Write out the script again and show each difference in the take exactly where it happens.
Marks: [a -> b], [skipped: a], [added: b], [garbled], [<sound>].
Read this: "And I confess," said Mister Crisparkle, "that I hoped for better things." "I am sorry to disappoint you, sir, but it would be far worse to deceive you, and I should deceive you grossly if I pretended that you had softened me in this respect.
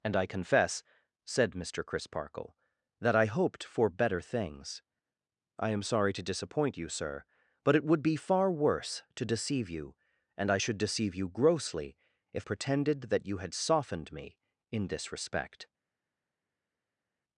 "And I confess," said Mister Crisparkle, "that I hoped for better things." "I am sorry to disappoint you, sir, but it would be far worse to deceive you, and I should deceive you grossly if [skipped: I] pretended that you had softened me in this respect.